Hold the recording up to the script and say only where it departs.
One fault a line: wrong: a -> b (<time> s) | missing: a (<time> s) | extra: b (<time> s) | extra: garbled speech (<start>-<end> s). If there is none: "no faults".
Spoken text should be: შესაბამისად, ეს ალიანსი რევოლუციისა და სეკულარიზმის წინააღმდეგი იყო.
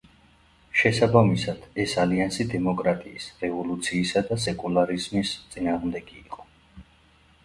extra: დემოკრატიის (2.5 s)